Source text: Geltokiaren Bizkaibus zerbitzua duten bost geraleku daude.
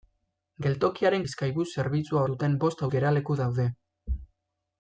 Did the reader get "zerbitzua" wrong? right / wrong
right